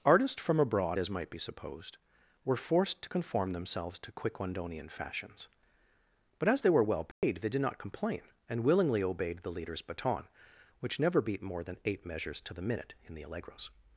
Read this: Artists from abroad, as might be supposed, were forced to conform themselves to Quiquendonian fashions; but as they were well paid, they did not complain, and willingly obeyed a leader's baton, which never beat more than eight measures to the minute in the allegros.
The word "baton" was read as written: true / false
true